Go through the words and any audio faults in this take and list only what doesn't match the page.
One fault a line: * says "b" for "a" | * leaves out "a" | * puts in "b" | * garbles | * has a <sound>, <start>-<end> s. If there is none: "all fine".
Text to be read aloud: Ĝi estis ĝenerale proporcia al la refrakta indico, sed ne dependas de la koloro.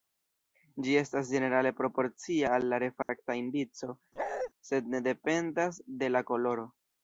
* says "estas" for "estis"
* has a dropout, 3.0-3.1 s
* has a bark, 4.2-4.5 s